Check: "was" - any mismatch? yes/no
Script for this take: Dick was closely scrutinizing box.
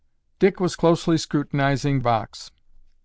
no